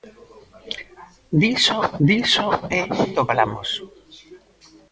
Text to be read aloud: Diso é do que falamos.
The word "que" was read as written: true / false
false